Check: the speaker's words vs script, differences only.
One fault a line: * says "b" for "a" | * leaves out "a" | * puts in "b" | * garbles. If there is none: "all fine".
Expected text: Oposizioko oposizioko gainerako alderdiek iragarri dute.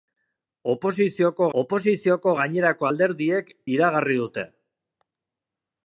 all fine